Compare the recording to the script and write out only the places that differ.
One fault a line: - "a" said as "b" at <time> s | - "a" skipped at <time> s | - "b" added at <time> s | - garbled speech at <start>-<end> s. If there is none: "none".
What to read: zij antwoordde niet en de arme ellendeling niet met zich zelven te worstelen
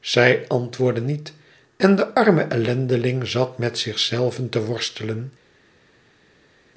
- "niet" said as "zat" at 3.3 s